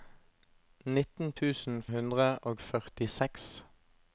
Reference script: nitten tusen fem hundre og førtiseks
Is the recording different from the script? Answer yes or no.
yes